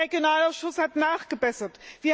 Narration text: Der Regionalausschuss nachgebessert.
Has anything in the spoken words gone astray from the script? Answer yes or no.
yes